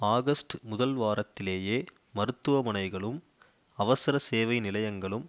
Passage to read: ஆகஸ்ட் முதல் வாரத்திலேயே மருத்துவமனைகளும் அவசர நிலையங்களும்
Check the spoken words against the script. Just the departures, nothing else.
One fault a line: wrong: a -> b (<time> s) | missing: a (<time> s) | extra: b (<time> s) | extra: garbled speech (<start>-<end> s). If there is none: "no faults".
extra: சேவை (4.2 s)